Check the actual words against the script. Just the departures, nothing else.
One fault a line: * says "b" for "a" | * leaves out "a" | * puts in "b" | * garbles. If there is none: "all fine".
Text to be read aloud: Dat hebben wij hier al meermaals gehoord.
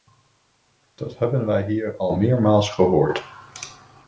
all fine